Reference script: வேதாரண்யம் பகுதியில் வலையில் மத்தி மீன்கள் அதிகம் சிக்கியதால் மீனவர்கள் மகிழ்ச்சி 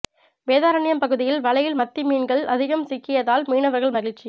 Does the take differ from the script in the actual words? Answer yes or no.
no